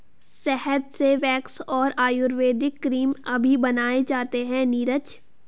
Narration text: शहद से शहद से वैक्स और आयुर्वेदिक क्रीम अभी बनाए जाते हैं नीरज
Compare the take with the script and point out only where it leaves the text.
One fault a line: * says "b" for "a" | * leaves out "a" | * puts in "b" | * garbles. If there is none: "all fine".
* leaves out "शहद से"